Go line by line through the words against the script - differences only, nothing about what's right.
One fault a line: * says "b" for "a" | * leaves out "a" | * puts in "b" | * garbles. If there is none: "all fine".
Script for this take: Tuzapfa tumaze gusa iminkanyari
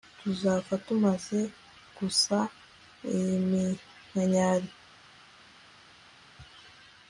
all fine